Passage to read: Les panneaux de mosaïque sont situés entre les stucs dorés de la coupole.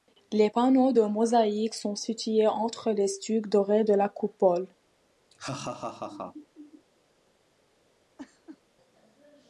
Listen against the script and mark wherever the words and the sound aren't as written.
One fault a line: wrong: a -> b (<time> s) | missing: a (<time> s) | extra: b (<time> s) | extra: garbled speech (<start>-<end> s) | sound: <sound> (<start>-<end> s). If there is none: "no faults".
sound: laugh (5.3-6.9 s)
sound: laugh (8.2-8.6 s)